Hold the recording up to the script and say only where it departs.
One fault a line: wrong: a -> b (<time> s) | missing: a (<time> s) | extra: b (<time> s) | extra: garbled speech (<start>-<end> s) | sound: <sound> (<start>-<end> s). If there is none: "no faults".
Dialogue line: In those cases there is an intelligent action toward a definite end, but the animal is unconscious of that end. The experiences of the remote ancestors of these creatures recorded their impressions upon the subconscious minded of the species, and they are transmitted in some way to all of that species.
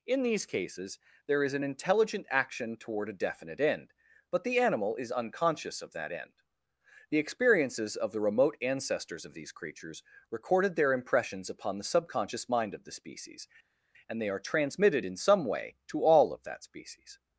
wrong: those -> these (0.2 s)
wrong: minded -> mind (12.5 s)